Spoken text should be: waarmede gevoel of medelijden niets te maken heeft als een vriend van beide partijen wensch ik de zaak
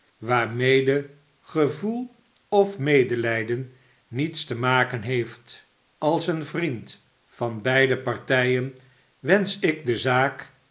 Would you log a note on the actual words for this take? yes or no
no